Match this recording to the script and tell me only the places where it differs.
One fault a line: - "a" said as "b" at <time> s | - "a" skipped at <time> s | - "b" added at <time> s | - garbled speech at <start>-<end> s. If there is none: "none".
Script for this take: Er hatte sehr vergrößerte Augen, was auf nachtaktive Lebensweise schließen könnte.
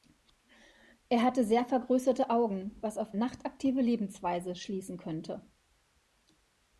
none